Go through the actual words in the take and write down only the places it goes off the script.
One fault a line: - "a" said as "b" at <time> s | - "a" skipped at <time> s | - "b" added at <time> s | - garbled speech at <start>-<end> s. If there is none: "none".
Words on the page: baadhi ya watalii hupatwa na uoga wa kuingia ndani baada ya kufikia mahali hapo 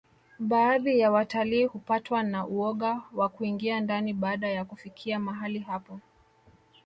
none